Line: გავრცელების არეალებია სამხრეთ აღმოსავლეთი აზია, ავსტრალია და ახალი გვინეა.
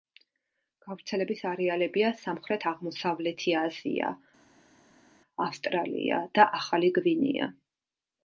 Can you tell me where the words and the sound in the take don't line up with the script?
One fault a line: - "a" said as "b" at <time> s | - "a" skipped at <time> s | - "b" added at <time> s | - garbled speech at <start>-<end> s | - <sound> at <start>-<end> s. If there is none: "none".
none